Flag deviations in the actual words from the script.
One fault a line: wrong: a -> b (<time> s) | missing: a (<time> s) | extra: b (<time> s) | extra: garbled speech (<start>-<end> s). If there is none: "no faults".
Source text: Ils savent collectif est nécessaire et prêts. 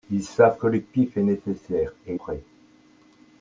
no faults